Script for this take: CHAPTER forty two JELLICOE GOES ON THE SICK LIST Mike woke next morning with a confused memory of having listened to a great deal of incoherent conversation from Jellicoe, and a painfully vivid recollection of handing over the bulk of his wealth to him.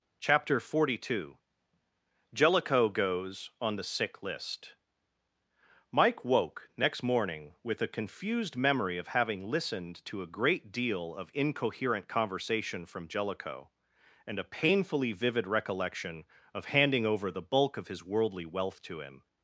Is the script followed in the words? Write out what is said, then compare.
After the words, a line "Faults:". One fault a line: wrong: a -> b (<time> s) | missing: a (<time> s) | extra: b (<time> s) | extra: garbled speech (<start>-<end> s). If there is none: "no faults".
CHAPTER forty two JELLICOE GOES ON THE SICK LIST Mike woke next morning with a confused memory of having listened to a great deal of incoherent conversation from Jellicoe, and a painfully vivid recollection of handing over the bulk of his worldly wealth to him.
Faults:
extra: worldly (18.0 s)